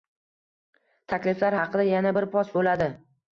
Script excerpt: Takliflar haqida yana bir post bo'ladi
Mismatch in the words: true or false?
false